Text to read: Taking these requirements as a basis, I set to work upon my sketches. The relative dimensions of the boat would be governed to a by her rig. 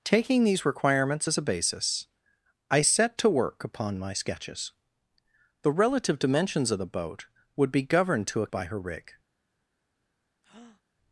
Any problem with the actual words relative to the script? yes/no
no